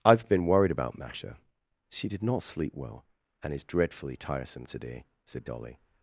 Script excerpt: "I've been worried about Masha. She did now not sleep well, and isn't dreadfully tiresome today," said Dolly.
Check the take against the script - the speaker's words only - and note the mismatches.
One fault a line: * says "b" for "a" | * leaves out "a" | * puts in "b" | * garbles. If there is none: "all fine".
* leaves out "now"
* says "is" for "isn't"